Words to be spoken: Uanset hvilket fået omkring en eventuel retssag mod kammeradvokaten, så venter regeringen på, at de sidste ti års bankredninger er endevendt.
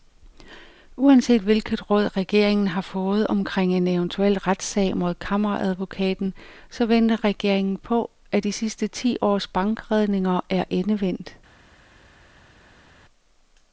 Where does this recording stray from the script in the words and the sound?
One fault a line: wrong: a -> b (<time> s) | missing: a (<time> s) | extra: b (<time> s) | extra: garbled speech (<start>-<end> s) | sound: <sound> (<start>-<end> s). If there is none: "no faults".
extra: råd regeringen har (1.9 s)